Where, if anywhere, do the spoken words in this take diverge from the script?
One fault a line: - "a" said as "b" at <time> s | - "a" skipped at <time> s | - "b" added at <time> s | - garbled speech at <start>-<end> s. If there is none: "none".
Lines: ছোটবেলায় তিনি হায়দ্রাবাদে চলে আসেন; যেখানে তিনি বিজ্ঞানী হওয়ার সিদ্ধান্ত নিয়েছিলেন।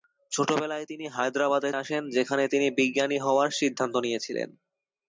- "চলে" skipped at 1.7 s